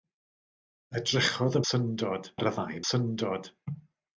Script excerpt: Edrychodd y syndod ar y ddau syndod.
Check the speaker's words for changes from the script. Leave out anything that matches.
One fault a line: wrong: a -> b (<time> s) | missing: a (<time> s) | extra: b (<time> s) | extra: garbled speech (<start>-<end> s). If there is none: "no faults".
no faults